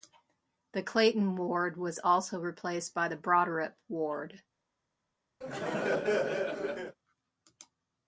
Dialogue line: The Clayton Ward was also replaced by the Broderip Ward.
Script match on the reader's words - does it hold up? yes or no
yes